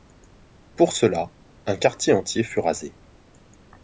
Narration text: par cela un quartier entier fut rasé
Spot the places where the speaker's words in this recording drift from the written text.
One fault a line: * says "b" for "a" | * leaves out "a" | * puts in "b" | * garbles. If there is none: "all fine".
* says "pour" for "par"